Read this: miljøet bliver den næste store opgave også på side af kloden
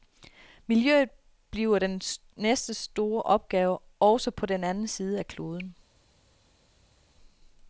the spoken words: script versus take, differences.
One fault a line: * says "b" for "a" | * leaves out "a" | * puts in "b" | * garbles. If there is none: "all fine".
* puts in "den anden"